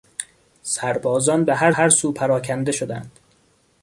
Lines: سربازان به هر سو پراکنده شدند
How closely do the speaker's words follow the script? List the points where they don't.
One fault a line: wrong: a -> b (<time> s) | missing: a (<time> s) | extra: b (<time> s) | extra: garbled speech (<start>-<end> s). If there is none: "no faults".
extra: هر (1.7 s)